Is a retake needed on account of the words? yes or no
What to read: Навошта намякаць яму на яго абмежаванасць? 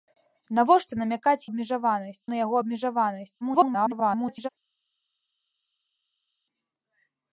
yes